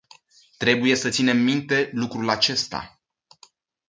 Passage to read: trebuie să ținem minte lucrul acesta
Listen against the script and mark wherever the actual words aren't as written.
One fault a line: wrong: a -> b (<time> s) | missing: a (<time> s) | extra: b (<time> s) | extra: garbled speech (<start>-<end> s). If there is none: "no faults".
no faults